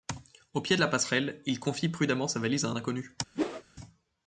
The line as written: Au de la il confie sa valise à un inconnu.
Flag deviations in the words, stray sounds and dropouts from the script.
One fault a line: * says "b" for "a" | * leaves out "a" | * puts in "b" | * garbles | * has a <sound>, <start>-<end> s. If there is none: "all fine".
* puts in "pied"
* puts in "passerelle"
* puts in "prudemment"
* has a whoosh, 3.3-3.6 s